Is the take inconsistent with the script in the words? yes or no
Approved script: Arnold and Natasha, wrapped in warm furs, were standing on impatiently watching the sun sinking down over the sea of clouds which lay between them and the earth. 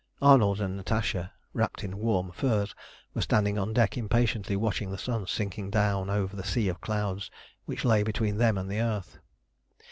yes